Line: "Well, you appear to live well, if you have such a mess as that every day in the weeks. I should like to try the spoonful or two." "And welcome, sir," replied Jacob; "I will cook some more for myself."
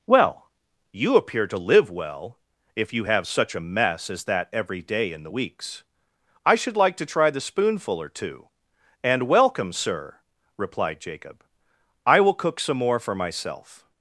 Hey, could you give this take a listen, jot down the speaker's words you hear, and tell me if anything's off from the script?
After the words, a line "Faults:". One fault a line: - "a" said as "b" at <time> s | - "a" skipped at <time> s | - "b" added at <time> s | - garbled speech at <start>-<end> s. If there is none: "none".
"Well, you appear to live well, if you have such a mess as that every day in the weeks. I should like to try the spoonful or two." "And welcome, sir," replied Jacob; "I will cook some more for myself."
Faults:
none